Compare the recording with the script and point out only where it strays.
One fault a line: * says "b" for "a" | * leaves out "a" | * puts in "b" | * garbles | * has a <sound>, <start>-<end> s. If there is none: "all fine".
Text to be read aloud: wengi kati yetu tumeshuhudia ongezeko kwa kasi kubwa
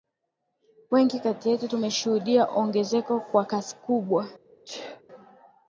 * has a sneeze, 4.6-5.0 s